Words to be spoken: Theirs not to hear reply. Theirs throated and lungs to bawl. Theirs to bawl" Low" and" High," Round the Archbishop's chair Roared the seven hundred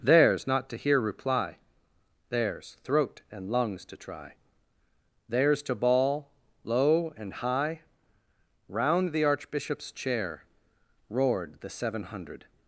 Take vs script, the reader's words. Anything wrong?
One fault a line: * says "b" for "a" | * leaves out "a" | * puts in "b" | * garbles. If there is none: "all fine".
* says "throat" for "throated"
* says "try" for "bawl"